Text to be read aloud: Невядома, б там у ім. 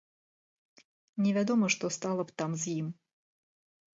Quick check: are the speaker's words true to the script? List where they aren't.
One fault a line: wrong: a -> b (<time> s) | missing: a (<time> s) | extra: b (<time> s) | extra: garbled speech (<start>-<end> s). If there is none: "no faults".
extra: што стала (1.8 s)
wrong: у -> з (2.6 s)